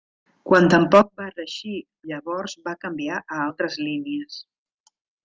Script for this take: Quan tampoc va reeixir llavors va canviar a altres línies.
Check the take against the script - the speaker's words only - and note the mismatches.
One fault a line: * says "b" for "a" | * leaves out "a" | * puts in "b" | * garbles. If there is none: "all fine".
all fine